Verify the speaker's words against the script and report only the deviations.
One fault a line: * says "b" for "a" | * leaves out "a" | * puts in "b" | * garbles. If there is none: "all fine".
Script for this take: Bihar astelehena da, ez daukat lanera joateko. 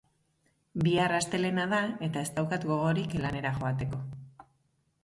* puts in "eta"
* puts in "gogorik"